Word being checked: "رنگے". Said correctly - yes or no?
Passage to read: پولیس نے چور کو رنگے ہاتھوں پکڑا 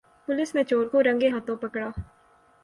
yes